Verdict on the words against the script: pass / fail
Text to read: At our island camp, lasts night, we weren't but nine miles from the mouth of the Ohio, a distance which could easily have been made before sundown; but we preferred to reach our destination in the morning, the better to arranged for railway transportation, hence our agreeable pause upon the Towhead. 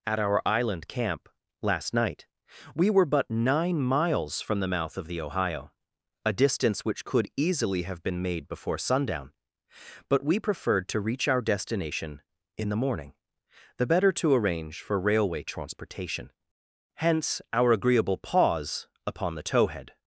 fail